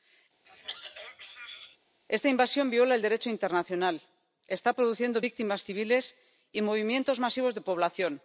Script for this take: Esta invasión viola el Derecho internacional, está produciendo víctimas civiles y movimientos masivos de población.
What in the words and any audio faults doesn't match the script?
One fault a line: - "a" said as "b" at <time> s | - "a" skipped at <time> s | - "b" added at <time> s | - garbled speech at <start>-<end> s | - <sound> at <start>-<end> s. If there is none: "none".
- throat clearing at 0.4-1.8 s